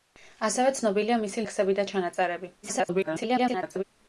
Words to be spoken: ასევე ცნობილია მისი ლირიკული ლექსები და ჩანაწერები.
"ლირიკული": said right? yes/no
no